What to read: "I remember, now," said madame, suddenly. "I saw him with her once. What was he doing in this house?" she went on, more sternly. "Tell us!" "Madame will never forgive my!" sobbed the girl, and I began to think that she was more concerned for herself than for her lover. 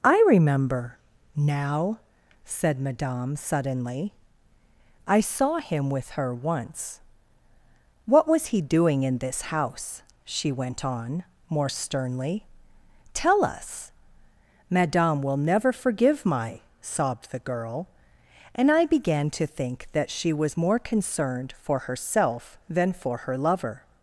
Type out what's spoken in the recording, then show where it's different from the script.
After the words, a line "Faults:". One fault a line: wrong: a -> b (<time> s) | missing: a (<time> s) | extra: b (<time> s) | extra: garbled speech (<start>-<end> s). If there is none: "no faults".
"I remember, now," said madame, suddenly. "I saw him with her once. What was he doing in this house?" she went on, more sternly. "Tell us!" "Madame will never forgive my!" sobbed the girl, and I began to think that she was more concerned for herself than for her lover.
Faults:
no faults